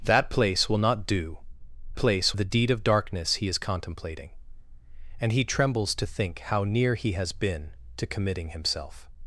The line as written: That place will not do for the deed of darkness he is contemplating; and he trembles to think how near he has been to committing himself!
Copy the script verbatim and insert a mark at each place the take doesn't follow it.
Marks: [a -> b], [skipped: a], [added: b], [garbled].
That place will not do [for -> place] the deed of darkness he is contemplating; and he trembles to think how near he has been to committing himself!